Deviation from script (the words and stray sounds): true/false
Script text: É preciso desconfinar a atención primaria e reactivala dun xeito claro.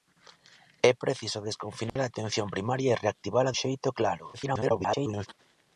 true